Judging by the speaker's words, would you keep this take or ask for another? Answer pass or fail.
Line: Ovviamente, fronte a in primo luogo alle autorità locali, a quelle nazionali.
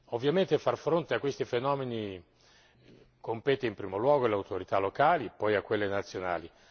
fail